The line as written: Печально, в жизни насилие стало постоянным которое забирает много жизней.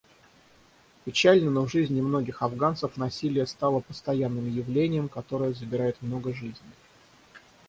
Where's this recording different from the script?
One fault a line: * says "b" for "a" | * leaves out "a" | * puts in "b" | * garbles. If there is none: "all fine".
* puts in "но"
* puts in "многих афганцев"
* puts in "явлением"